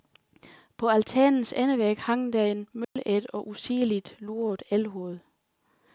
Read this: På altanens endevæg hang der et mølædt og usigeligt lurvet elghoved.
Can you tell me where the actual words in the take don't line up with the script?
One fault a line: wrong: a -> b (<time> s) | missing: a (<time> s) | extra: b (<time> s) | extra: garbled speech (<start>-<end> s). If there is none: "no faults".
no faults